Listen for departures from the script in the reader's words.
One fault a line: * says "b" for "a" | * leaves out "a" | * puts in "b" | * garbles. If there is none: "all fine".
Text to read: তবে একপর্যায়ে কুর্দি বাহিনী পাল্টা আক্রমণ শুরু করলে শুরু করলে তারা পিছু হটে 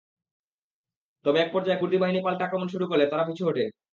* leaves out "শুরু করলে"